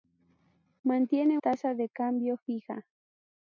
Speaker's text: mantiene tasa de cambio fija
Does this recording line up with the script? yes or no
yes